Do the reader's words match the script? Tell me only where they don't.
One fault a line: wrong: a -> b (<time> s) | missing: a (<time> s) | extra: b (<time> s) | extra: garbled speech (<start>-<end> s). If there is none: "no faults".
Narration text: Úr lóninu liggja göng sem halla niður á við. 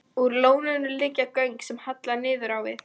no faults